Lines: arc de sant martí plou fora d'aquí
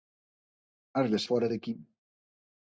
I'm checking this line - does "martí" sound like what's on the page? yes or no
no